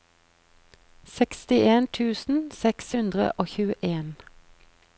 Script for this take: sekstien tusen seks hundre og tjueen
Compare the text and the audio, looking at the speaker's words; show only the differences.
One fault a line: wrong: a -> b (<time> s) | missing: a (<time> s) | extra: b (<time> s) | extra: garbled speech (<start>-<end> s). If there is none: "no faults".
no faults